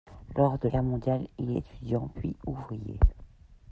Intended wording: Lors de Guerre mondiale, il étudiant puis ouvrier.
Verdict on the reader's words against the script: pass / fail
pass